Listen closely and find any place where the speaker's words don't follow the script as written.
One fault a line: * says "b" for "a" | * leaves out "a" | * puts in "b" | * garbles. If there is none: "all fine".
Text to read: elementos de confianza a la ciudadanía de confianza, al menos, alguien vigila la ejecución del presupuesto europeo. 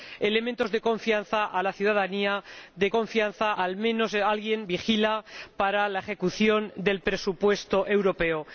all fine